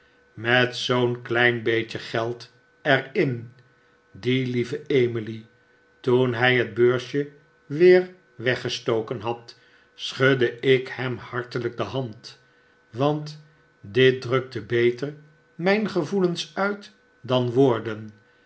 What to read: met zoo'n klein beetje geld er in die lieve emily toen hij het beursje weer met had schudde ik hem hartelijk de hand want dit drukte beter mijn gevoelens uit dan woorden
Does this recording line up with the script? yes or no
no